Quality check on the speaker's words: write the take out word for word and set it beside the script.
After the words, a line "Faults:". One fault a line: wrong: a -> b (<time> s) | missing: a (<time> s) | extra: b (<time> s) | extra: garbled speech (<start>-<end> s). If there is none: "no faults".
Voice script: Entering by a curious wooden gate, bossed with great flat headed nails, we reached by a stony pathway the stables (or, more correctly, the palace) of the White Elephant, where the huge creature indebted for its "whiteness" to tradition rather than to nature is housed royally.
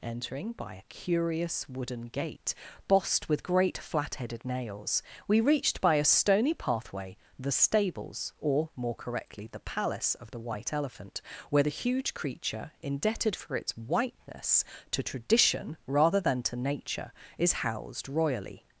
Entering by a curious wooden gate, bossed with great flat headed nails, we reached by a stony pathway the stables (or, more correctly, the palace) of the White Elephant, where the huge creature indebted for its "whiteness" to tradition rather than to nature is housed royally.
Faults:
no faults